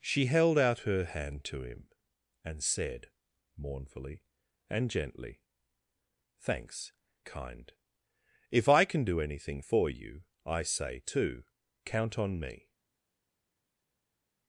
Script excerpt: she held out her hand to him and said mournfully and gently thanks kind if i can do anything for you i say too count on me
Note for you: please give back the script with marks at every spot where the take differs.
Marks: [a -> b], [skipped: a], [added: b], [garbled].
she held out her hand to him and said mournfully and gently thanks kind if i can do anything for you i say too count on me